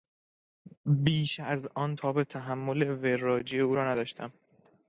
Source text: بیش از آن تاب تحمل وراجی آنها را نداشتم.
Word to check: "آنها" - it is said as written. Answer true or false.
false